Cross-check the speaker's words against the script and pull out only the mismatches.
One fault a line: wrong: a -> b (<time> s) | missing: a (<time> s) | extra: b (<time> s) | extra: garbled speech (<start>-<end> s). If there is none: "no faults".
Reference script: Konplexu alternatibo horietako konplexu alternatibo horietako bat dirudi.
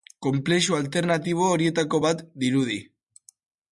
missing: konplexu alternatibo horietako (2.0 s)